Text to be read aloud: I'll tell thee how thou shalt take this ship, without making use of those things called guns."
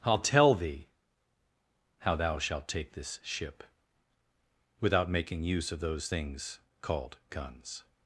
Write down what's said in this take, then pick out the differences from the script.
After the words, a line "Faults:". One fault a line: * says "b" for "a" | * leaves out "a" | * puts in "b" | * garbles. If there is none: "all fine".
I'll tell thee how thou shalt take this ship, without making use of those things called guns."
Faults:
all fine